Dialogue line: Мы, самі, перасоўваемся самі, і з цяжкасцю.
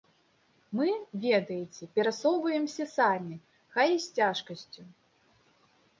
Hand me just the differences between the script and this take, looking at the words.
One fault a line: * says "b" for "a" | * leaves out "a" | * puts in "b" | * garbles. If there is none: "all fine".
* says "ведаеце" for "самі"
* puts in "хай"